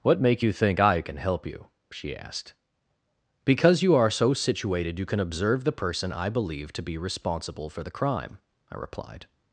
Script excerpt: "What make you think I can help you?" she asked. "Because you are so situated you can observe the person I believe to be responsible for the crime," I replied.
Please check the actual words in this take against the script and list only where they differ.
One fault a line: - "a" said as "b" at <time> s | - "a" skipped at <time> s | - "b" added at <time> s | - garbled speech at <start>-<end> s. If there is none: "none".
none